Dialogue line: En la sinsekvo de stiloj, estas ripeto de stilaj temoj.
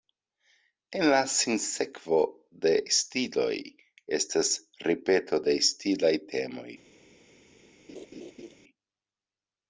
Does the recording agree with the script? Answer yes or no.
yes